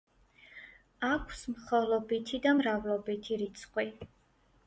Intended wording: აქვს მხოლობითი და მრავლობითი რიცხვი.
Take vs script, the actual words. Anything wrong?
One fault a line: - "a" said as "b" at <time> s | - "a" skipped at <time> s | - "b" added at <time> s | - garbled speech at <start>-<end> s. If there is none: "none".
none